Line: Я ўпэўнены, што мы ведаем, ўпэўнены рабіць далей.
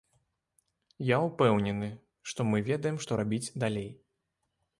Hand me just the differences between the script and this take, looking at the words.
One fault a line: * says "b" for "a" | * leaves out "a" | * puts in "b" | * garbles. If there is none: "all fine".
* says "што" for "ўпэўнены"